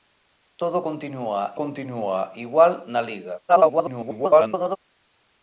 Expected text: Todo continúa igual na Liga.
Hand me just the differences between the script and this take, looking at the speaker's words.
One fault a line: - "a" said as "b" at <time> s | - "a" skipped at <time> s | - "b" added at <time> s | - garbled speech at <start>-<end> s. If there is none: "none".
- "continúa" added at 1.5 s
- garbled speech at 3.5-4.8 s